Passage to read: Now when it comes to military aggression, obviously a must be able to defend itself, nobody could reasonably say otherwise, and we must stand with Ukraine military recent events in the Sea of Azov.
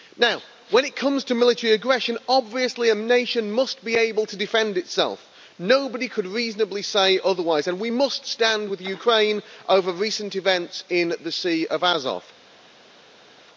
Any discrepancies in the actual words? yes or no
yes